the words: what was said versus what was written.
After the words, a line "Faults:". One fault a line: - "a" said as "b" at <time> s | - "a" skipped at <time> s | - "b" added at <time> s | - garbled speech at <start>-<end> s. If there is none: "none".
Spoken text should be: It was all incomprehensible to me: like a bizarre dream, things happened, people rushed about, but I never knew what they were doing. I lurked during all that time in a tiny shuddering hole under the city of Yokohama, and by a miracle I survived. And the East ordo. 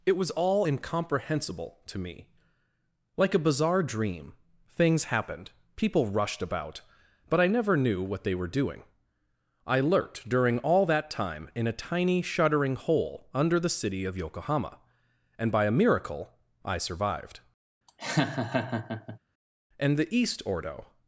It was all incomprehensible to me: like a bizarre dream, things happened, people rushed about, but I never knew what they were doing. I lurked during all that time in a tiny shuddering hole under the city of Yokohama, and by a miracle I survived. And the East ordo.
Faults:
none